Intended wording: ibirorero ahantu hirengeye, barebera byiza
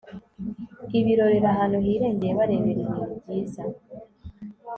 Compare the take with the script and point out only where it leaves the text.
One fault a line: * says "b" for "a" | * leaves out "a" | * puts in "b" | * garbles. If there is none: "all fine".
* puts in "ibintu"